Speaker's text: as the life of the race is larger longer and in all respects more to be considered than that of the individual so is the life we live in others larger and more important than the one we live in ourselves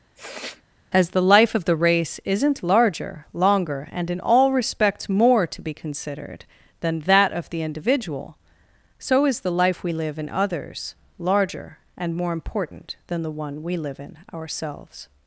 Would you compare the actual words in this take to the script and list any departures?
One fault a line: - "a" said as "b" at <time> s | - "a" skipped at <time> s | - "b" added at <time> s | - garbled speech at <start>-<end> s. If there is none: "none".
- "is" said as "isn't" at 2.2 s